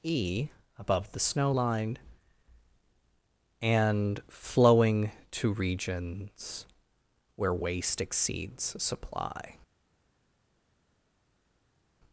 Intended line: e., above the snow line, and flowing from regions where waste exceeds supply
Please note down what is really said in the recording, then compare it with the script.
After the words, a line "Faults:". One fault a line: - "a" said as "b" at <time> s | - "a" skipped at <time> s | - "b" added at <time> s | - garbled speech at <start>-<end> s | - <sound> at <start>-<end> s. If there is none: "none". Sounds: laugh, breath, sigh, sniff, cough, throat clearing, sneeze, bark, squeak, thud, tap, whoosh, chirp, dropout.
e., above the snow line, and flowing to regions where waste exceeds supply
Faults:
- "from" said as "to" at 5.3 s